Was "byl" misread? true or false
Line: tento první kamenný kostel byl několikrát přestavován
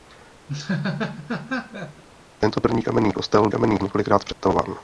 true